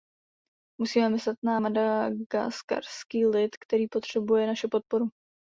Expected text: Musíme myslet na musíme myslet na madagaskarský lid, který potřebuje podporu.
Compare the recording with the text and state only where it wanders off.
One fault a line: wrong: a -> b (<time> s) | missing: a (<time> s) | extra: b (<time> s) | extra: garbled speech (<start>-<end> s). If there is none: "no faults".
missing: musíme myslet na (1.6 s)
extra: naši (4.5 s)